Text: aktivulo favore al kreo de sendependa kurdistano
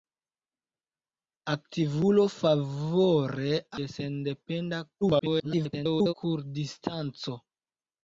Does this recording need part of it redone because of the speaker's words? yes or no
yes